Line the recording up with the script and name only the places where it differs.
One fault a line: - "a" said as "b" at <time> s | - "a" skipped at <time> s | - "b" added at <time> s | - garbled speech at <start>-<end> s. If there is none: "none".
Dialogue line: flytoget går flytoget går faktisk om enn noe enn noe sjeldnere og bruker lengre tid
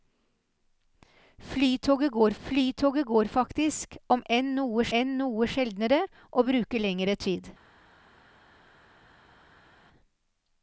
none